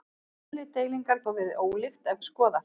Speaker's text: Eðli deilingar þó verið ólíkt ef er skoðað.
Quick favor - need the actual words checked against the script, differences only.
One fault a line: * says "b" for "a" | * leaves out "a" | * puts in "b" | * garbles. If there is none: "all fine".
all fine